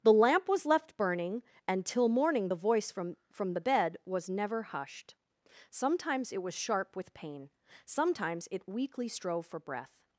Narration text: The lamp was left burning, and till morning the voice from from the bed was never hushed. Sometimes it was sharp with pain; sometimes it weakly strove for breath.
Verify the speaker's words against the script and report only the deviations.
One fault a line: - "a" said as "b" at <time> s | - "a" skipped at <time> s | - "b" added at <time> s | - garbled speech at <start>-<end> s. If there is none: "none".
none